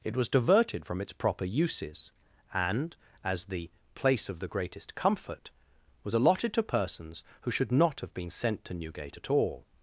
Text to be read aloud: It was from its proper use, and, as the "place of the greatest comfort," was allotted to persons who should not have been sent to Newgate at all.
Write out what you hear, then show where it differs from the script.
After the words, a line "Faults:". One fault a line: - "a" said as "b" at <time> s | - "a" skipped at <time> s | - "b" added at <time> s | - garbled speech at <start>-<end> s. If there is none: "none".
It was diverted from its proper uses, and, as the "place of the greatest comfort," was allotted to persons who should not have been sent to Newgate at all.
Faults:
- "diverted" added at 0.3 s
- "use" said as "uses" at 1.4 s